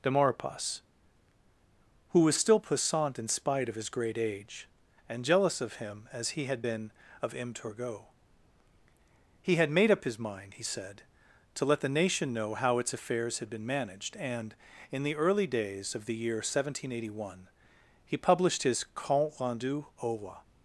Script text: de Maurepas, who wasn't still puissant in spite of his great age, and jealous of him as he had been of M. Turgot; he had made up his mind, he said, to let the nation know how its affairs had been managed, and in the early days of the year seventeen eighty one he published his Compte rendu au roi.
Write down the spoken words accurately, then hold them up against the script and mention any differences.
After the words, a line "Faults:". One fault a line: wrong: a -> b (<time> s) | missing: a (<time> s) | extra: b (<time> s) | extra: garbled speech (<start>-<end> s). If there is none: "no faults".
de Maurepas, who was still puissant in spite of his great age, and jealous of him as he had been of M. Turgot; he had made up his mind, he said, to let the nation know how its affairs had been managed, and in the early days of the year seventeen eighty one he published his Compte rendu au roi.
Faults:
wrong: wasn't -> was (2.2 s)